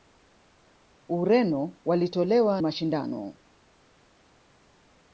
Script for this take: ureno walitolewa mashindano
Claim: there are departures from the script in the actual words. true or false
false